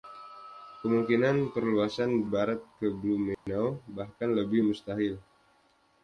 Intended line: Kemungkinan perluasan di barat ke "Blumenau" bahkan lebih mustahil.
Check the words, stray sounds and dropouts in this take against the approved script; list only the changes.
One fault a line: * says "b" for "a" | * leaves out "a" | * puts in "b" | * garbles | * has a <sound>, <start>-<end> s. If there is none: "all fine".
* leaves out "di"
* has a dropout, 3.3-3.5 s